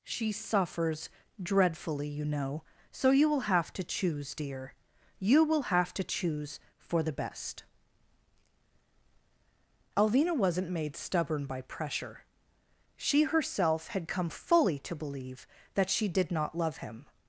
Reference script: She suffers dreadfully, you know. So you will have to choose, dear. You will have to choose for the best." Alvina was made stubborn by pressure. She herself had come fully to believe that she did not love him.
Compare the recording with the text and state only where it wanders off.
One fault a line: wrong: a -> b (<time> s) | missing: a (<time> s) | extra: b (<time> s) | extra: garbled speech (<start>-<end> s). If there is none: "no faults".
wrong: was -> wasn't (10.4 s)